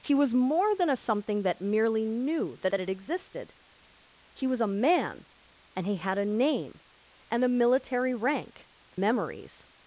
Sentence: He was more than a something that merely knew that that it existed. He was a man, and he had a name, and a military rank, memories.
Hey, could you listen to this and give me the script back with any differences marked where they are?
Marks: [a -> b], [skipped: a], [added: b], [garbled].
He was more than a something that merely knew that that it existed. He was a man, and he had a name, and a military rank, memories.